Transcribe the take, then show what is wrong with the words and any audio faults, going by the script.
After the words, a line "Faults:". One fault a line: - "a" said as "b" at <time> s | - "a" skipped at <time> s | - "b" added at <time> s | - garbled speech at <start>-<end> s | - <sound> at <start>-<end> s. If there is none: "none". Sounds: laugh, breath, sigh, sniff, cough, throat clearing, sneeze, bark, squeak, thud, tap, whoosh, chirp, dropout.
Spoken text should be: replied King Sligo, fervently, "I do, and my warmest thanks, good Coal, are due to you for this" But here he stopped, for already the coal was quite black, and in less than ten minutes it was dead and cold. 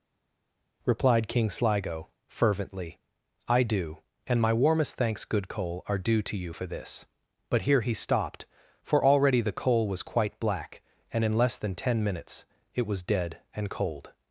replied King Sligo, fervently, "I do, and my warmest thanks, good Coal, are due to you for this" But here he stopped, for already the coal was quite black, and in less than ten minutes it was dead and cold.
Faults:
none